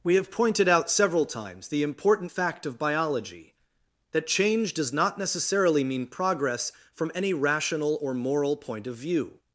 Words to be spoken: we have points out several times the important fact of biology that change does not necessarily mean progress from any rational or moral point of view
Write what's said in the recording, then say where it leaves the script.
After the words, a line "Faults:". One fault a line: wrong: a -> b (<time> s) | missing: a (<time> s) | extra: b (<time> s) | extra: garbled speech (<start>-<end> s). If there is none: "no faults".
we have pointed out several times the important fact of biology that change does not necessarily mean progress from any rational or moral point of view
Faults:
wrong: points -> pointed (0.3 s)